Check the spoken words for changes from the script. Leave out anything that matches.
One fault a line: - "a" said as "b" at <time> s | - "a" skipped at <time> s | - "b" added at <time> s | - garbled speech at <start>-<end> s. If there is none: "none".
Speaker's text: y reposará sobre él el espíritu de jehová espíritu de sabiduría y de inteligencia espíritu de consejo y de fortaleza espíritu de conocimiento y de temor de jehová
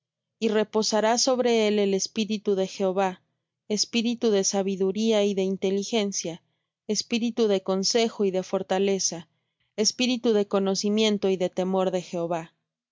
none